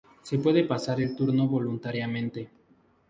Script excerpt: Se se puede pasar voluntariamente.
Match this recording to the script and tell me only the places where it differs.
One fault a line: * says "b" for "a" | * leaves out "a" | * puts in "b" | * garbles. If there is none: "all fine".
* leaves out "se"
* puts in "el turno"